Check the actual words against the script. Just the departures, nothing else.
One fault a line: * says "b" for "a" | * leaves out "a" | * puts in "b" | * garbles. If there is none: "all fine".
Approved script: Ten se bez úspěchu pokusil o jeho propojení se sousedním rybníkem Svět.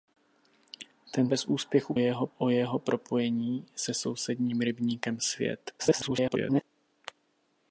* leaves out "se"
* says "jeho" for "pokusil"
* garbles